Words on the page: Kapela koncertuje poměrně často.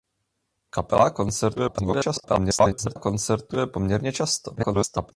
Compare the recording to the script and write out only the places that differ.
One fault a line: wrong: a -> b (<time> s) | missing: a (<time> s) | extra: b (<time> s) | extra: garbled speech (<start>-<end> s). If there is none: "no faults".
extra: garbled speech (1.5-3.0 s)
extra: garbled speech (4.6-5.1 s)